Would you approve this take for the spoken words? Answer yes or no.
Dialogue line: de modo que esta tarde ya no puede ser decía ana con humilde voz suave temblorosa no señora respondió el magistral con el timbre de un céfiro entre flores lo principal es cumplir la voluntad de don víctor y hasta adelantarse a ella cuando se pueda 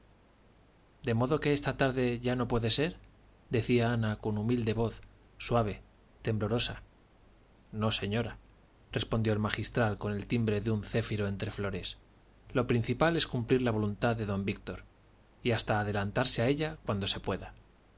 yes